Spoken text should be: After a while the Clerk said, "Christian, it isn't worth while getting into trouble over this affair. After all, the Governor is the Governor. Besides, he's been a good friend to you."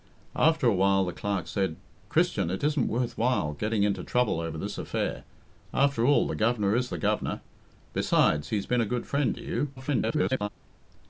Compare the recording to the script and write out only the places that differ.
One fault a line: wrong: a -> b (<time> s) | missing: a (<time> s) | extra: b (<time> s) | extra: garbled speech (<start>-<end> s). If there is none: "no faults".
extra: garbled speech (9.8-10.5 s)